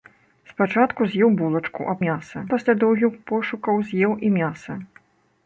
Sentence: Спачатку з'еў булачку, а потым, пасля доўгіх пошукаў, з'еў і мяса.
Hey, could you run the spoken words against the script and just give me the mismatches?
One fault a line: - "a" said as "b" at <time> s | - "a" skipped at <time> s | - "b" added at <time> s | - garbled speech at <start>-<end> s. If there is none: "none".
- "потым" said as "мяса" at 2.0 s